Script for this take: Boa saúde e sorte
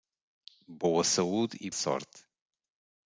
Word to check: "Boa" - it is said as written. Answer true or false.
true